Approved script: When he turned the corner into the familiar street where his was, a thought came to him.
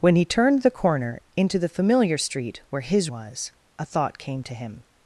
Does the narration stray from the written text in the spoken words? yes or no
no